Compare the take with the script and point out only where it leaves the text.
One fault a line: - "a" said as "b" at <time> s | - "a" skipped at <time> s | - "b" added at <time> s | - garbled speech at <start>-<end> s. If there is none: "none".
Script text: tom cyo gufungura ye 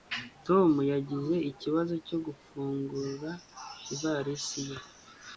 - "yagize ikibazo" added at 0.9 s
- "ivalisi" added at 3.9 s